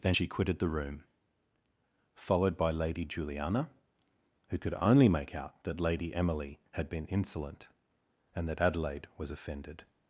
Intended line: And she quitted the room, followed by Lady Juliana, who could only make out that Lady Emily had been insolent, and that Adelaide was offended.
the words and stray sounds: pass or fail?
fail